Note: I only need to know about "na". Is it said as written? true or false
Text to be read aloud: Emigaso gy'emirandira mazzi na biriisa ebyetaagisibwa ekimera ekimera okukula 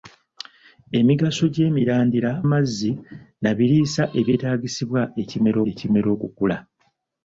true